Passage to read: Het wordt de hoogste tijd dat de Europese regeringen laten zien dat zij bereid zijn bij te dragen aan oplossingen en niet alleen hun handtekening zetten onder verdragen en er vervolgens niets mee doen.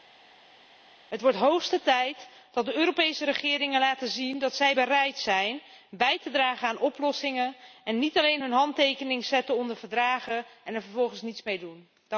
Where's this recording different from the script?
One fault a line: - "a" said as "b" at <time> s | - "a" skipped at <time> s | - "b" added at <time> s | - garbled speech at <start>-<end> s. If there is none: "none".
none